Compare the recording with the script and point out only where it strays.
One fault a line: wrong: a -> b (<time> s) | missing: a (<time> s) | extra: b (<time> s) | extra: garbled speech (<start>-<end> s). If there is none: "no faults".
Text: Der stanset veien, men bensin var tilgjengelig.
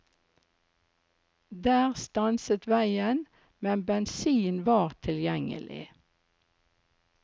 no faults